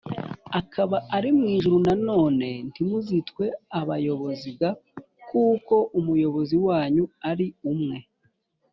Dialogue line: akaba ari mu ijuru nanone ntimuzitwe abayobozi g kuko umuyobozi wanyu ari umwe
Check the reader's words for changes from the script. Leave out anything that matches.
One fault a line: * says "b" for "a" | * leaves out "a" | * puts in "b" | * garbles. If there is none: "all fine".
all fine